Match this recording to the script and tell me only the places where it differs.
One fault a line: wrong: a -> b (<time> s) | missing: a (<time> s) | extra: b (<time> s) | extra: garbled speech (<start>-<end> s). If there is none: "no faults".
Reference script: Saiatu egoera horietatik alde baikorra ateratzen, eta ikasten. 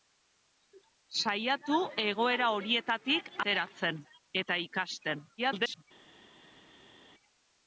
missing: alde baikorra (3.3 s)
extra: garbled speech (5.4-5.8 s)